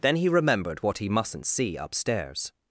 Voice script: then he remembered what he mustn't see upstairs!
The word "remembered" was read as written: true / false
true